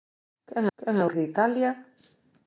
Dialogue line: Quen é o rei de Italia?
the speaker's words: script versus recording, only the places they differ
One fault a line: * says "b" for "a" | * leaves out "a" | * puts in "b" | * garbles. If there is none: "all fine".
* puts in "quen"
* leaves out "rei"